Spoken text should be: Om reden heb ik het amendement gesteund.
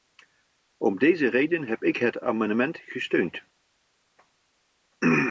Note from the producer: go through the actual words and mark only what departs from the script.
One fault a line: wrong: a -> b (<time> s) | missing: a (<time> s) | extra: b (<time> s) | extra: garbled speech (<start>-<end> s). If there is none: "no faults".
extra: deze (1.0 s)